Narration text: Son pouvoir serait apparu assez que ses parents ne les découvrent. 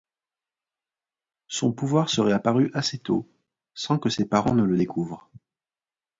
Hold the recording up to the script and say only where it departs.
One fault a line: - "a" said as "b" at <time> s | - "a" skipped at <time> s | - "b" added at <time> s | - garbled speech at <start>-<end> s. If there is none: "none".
- "tôt sans" added at 3.0 s
- "les" said as "le" at 4.6 s